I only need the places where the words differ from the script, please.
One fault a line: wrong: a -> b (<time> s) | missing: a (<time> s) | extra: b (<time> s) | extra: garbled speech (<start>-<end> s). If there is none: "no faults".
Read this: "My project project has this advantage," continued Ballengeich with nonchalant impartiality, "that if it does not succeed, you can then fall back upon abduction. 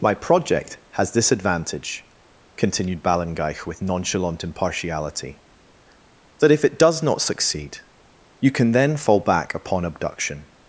missing: project (0.8 s)